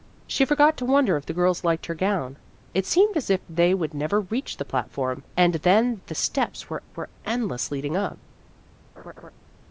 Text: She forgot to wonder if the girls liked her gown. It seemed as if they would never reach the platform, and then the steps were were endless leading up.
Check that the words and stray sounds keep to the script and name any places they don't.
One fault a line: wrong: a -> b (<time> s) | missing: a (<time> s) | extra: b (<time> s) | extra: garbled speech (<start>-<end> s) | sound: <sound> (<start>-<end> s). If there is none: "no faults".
sound: laugh (9.0-9.3 s)